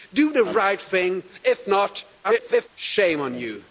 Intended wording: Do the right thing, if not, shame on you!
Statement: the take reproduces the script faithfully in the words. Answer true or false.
false